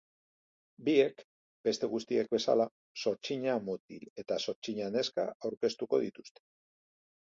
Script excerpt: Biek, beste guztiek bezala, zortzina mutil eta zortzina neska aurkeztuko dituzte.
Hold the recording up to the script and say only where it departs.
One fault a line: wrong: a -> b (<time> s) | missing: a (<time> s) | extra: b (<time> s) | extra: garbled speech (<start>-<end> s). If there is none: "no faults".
no faults